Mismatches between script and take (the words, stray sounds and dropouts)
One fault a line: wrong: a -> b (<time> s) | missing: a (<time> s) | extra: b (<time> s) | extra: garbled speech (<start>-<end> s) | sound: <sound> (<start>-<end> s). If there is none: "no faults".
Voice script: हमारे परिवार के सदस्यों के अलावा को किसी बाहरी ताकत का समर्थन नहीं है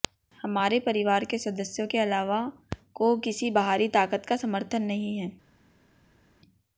no faults